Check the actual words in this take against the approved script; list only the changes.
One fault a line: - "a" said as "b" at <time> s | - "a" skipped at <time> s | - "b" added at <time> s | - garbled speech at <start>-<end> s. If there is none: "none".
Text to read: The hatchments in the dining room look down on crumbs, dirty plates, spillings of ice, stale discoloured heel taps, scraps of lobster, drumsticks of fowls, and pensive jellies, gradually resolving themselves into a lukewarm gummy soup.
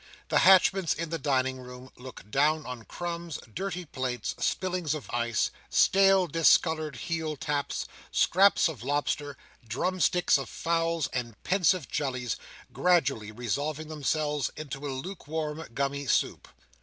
none